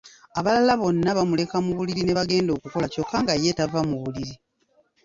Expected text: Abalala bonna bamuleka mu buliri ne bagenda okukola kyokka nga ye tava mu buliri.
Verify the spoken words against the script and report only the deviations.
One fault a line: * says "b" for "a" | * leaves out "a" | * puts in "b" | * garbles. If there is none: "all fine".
all fine